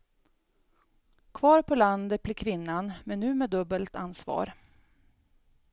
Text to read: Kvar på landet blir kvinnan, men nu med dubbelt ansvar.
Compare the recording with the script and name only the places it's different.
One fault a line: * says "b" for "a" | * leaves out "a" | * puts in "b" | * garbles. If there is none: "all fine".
all fine